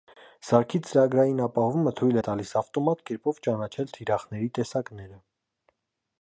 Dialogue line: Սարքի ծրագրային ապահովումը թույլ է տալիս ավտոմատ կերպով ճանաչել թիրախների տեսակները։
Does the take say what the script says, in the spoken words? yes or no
yes